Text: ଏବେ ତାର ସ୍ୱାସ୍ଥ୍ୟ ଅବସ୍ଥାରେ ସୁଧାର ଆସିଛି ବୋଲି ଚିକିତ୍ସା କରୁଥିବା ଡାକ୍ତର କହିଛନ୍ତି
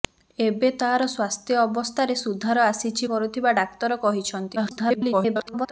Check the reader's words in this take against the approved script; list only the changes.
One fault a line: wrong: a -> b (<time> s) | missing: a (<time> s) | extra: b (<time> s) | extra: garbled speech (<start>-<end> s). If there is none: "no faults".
missing: ବୋଲି ଚିକିତ୍ସା (3.1 s)
extra: garbled speech (4.6-5.7 s)